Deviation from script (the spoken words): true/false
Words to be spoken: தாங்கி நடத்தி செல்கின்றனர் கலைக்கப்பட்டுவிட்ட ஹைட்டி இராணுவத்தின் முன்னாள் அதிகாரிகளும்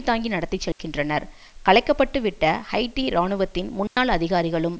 false